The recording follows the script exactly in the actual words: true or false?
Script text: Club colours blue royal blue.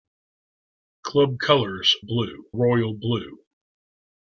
true